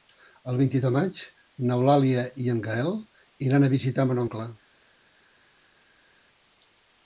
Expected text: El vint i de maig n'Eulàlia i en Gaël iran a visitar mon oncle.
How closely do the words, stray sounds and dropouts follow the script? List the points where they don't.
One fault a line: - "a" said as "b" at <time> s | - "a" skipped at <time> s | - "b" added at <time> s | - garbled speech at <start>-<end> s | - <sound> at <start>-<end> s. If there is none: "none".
none